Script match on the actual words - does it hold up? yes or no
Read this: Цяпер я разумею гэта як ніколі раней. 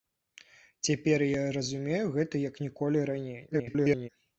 no